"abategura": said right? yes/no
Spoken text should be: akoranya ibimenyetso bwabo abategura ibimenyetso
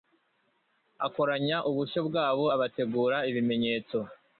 yes